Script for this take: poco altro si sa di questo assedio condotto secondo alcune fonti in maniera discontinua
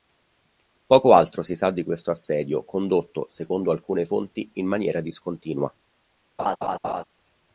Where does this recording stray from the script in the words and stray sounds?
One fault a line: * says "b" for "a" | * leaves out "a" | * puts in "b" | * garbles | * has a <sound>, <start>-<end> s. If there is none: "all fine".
* has a laugh, 6.4-7.0 s